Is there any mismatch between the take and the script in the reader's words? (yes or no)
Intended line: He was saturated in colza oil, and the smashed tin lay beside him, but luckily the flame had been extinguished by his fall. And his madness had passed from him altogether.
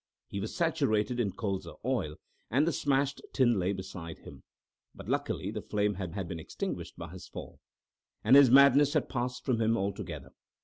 yes